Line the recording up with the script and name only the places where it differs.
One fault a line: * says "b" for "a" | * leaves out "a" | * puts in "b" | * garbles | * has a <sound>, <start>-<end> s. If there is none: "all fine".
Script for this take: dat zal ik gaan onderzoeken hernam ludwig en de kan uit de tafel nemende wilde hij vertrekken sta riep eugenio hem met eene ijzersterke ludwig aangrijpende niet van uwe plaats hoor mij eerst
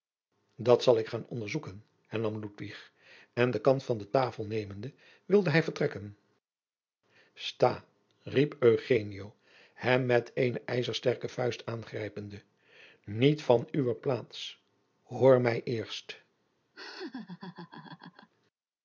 * says "van" for "uit"
* says "vuist" for "ludwig"
* has a laugh, 16.7-18.3 s